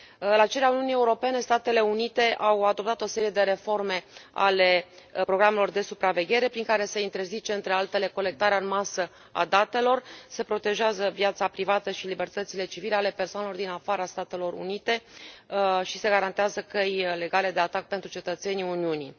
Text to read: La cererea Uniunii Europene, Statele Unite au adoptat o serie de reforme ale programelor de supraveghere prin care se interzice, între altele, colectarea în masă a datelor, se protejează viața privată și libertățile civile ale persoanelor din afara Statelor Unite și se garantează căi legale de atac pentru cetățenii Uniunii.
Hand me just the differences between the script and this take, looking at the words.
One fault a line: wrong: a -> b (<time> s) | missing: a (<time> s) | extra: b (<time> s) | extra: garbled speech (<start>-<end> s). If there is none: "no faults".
no faults